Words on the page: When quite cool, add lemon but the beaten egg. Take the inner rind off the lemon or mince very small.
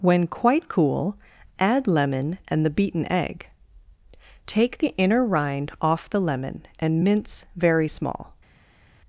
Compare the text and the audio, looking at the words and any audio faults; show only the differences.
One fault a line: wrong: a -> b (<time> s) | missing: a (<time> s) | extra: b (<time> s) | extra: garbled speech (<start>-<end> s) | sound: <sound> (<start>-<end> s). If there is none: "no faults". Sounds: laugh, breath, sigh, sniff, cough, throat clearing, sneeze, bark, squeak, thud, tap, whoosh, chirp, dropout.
wrong: but -> and (2.5 s)
wrong: or -> and (6.8 s)